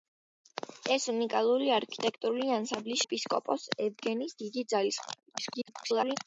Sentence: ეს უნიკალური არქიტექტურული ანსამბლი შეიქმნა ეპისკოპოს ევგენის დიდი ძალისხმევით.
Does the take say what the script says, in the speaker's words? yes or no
no